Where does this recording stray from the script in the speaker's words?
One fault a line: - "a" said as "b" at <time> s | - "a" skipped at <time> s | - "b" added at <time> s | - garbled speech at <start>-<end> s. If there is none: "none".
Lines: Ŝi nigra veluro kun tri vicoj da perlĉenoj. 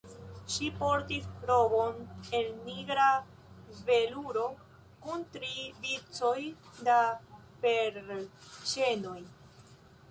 - "portis robon el" added at 0.8 s